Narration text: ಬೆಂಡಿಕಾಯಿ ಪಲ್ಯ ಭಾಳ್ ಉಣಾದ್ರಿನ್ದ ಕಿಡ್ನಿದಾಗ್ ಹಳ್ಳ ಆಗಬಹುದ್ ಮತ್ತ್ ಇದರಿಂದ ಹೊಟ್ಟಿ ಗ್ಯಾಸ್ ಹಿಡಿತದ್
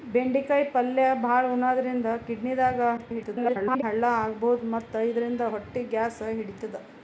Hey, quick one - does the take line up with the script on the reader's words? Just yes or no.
no